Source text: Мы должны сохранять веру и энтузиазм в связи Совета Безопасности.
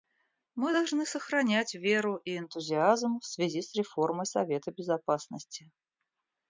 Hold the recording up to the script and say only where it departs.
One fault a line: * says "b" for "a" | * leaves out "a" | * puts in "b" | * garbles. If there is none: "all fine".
* puts in "с реформой"